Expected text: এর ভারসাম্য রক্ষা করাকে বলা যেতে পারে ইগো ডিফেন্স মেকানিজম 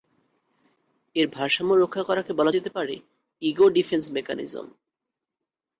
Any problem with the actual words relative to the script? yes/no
no